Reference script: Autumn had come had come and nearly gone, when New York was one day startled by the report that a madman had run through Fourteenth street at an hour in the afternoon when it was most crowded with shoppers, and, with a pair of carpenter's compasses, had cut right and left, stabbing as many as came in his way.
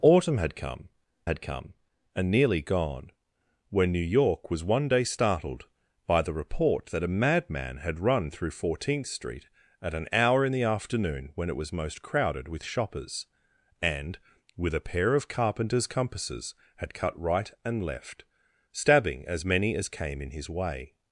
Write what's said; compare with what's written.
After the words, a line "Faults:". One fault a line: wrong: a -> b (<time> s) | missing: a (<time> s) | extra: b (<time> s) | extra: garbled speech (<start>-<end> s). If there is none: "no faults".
Autumn had come had come and nearly gone, when New York was one day startled by the report that a madman had run through Fourteenth street at an hour in the afternoon when it was most crowded with shoppers, and, with a pair of carpenter's compasses, had cut right and left, stabbing as many as came in his way.
Faults:
no faults